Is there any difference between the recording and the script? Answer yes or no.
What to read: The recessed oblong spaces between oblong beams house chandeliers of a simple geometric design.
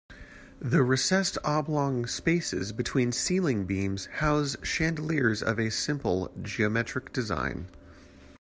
yes